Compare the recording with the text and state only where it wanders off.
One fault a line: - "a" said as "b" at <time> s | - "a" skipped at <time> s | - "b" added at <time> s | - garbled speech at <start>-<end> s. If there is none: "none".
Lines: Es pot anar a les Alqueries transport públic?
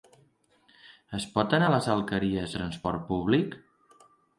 none